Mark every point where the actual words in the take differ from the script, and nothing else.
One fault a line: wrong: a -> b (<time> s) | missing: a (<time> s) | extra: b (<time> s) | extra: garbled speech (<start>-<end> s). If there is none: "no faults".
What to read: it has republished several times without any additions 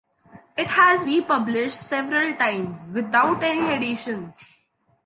no faults